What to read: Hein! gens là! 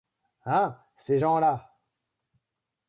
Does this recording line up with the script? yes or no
no